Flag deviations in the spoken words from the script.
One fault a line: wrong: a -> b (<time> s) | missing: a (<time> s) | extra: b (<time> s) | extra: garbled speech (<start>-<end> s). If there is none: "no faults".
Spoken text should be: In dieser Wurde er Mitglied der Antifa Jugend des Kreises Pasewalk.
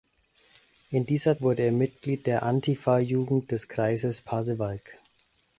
no faults